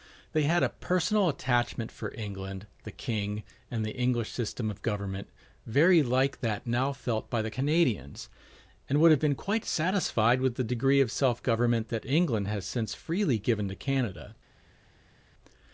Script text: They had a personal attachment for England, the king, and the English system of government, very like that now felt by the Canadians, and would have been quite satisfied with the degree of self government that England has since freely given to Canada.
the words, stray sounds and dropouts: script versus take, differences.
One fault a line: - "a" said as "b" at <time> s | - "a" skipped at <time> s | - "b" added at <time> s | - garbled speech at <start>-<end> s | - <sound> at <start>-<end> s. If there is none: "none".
none